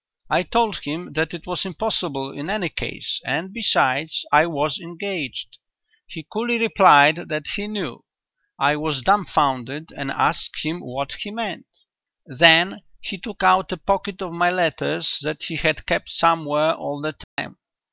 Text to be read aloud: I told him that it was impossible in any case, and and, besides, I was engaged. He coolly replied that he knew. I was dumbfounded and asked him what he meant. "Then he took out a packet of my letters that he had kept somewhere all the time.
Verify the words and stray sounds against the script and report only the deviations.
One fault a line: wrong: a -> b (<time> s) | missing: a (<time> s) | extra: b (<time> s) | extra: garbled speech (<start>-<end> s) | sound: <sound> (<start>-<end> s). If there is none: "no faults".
missing: and (3.5 s)
sound: dropout (17.2-17.4 s)